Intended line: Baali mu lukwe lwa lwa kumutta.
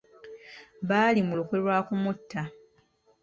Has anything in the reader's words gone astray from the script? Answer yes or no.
yes